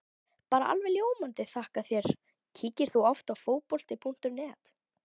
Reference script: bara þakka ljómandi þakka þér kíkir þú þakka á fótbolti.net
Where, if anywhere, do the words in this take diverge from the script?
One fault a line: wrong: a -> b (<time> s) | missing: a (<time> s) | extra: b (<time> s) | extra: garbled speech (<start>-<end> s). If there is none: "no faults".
wrong: þakka -> alveg (0.8 s)
wrong: þakka -> oft (3.1 s)